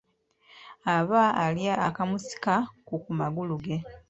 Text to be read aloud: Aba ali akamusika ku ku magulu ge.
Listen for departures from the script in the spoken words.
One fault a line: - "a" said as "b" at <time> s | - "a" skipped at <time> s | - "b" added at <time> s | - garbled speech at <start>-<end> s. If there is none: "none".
none